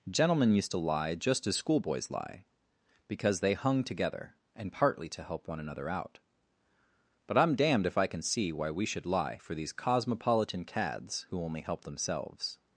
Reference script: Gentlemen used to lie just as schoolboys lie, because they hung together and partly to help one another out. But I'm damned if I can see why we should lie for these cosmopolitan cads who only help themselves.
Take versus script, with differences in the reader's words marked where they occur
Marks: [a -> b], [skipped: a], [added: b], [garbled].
Gentlemen used to lie just as schoolboys lie, because they hung together and partly to help one another out. But I'm damned if I can see why we should lie for these cosmopolitan cads who only help themselves.